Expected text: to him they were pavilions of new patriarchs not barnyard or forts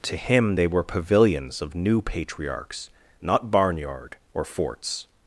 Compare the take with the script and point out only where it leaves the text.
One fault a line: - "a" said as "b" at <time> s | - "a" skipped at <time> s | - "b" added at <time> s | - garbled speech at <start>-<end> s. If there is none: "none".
none